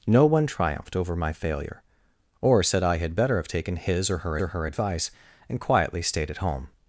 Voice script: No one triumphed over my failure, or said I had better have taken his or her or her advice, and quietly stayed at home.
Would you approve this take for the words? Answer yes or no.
yes